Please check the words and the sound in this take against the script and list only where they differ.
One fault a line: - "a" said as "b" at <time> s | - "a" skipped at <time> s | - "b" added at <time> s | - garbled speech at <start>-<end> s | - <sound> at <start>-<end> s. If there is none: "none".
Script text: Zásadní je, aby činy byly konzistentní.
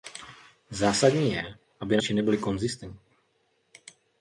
none